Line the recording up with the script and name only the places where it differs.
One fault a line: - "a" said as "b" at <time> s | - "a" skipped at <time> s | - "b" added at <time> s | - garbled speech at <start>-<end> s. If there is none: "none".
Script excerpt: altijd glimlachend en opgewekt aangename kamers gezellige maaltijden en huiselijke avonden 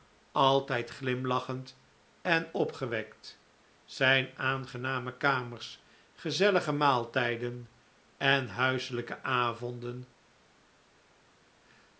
- "zijn" added at 3.9 s